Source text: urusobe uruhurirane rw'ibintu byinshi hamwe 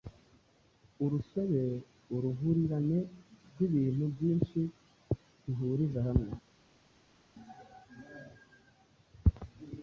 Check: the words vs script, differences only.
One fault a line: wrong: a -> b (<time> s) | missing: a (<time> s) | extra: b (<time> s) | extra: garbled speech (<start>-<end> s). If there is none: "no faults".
extra: bihuriza (5.4 s)